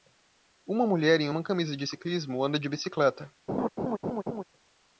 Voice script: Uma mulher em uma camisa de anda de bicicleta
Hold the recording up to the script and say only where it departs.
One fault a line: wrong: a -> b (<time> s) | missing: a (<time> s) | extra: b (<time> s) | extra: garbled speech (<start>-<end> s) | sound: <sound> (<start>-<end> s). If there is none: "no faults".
extra: ciclismo (1.8 s)
sound: laugh (3.5-4.4 s)